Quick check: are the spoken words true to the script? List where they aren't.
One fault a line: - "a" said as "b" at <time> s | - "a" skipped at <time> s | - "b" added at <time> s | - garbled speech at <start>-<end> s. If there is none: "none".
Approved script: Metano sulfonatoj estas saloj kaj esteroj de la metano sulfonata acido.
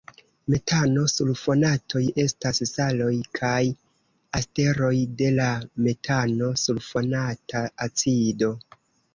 none